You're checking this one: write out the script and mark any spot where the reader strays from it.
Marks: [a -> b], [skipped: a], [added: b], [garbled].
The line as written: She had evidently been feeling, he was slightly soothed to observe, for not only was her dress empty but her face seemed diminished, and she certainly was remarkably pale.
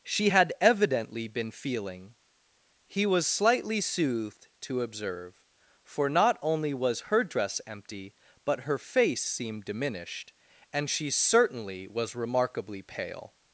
She had evidently been feeling, he was slightly soothed to observe, for not only was her dress empty but her face seemed diminished, and she certainly was remarkably pale.